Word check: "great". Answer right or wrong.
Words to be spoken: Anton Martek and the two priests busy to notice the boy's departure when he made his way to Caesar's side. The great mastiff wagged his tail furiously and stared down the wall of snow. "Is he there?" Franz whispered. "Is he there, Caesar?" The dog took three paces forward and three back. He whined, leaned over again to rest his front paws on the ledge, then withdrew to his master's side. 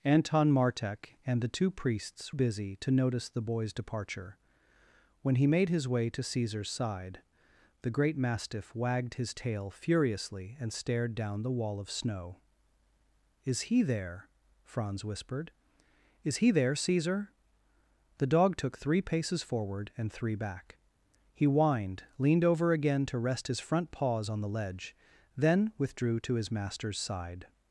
right